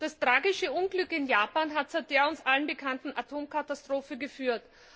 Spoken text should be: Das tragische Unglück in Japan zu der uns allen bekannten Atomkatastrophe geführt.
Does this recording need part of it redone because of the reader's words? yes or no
yes